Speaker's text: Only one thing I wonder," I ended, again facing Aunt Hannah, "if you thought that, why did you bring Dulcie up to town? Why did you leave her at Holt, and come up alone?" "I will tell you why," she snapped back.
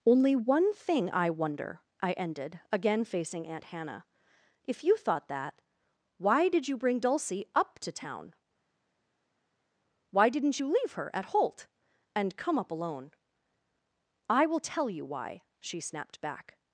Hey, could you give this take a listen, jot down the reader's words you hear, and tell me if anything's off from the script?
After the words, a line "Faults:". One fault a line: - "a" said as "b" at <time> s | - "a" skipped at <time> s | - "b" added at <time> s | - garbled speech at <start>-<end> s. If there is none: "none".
Only one thing I wonder," I ended, again facing Aunt Hannah, "if you thought that, why did you bring Dulcie up to town? Why didn't you leave her at Holt, and come up alone?" "I will tell you why," she snapped back.
Faults:
- "did" said as "didn't" at 10.3 s